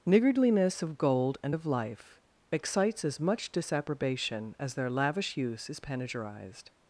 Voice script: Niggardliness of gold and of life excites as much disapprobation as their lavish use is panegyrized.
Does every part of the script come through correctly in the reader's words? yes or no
yes